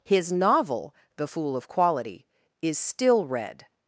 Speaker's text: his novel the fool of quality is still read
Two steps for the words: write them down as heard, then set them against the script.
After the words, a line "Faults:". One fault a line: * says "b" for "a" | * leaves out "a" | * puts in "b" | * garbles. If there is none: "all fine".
his novel the fool of quality is still read
Faults:
all fine